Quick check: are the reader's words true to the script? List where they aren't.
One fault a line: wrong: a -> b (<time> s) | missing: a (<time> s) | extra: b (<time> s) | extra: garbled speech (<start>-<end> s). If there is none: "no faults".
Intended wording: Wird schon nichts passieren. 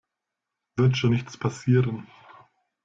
no faults